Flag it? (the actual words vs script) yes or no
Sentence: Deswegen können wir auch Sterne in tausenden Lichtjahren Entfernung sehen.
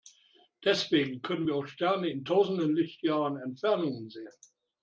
no